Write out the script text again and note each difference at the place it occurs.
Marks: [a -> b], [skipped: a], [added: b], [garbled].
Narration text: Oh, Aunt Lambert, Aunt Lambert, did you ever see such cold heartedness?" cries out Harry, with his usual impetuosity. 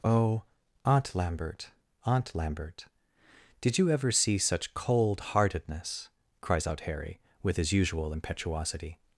Oh, Aunt Lambert, Aunt Lambert, did you ever see such cold heartedness?" cries out Harry, with his usual impetuosity.